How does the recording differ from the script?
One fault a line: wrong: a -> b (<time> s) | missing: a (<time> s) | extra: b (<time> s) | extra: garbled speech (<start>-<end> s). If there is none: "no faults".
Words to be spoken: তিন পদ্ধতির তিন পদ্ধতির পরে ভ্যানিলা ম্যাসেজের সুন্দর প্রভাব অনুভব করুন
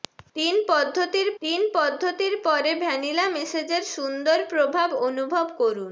no faults